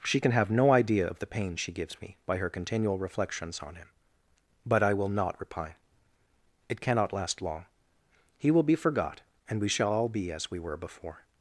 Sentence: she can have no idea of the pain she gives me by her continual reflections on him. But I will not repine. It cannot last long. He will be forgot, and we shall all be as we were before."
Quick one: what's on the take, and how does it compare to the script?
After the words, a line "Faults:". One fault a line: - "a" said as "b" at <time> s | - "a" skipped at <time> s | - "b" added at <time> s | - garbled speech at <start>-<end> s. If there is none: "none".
she can have no idea of the pain she gives me by her continual reflections on him. But I will not repine. It cannot last long. He will be forgot, and we shall all be as we were before."
Faults:
none